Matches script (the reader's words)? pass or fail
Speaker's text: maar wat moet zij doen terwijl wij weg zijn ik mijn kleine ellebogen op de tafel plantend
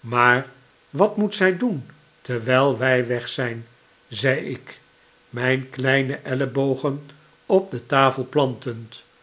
fail